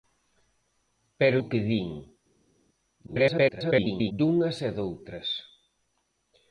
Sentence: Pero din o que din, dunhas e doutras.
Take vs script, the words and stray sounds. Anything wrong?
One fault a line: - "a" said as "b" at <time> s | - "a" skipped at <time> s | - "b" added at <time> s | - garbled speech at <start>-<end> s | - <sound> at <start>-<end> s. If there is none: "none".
- "din" skipped at 1.4 s
- garbled speech at 3.1-4.1 s